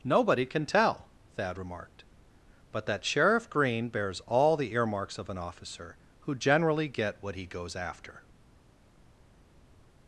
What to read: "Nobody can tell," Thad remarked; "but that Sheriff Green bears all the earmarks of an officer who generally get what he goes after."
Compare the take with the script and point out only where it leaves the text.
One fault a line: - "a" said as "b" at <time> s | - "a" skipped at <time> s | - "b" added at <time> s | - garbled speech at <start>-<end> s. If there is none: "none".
none